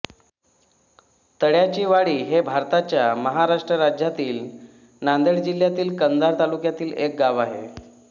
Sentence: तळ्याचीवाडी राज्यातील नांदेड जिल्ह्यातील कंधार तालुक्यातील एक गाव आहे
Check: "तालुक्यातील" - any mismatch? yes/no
no